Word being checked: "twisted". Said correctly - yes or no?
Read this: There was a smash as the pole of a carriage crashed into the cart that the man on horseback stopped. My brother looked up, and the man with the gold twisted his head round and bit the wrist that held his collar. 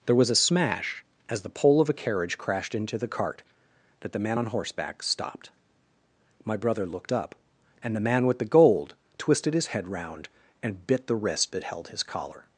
yes